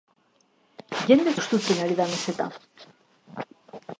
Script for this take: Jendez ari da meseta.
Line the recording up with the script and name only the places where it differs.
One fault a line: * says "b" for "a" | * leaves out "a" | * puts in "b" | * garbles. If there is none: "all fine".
* puts in "hustutzen"